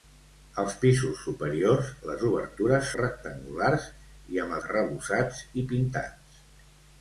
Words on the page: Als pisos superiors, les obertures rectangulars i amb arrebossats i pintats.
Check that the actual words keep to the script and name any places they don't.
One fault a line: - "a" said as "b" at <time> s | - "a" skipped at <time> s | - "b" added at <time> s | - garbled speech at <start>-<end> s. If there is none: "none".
none